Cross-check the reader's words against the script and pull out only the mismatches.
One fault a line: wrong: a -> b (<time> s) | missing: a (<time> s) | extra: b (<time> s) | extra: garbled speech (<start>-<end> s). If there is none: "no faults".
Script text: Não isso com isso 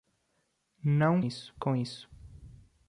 no faults